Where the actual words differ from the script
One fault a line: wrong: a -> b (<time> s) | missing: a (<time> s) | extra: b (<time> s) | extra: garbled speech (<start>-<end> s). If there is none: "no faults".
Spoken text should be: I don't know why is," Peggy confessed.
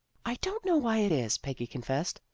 extra: it (1.0 s)